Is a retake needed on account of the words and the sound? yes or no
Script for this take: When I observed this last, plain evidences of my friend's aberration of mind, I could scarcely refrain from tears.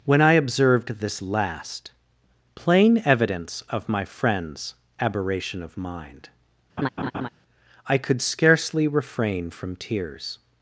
yes